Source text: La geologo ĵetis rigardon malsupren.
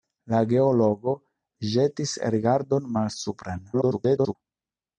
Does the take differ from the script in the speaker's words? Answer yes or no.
yes